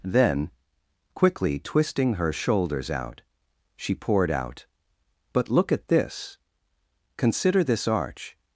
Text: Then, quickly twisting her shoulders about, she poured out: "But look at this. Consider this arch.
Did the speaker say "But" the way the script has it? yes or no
yes